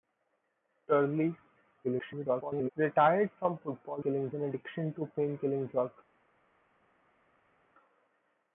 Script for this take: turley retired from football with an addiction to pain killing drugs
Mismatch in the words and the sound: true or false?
true